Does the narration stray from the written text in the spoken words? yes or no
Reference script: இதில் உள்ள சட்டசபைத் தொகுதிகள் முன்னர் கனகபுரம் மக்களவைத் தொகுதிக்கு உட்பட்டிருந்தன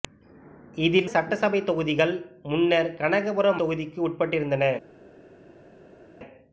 yes